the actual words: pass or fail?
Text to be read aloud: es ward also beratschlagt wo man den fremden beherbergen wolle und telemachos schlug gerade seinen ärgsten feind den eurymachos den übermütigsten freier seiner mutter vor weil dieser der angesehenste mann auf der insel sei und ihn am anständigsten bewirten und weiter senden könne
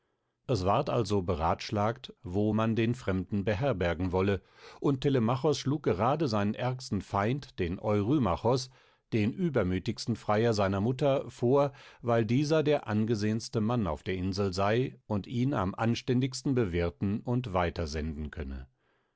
pass